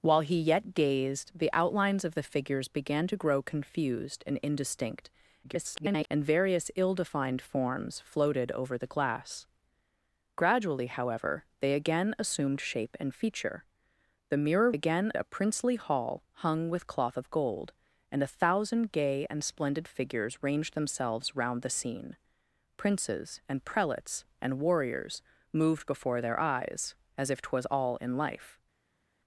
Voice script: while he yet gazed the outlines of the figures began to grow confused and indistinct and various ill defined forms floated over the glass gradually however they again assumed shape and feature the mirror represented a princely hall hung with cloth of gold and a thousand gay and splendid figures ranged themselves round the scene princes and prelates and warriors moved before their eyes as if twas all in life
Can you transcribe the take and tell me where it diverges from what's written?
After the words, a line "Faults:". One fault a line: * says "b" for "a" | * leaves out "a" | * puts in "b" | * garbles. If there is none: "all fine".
while he yet gazed the outlines of the figures began to grow confused and indistinct [garbled] and various ill defined forms floated over the glass gradually however they again assumed shape and feature the mirror again a princely hall hung with cloth of gold and a thousand gay and splendid figures ranged themselves round the scene princes and prelates and warriors moved before their eyes as if twas all in life
Faults:
* garbles
* says "again" for "represented"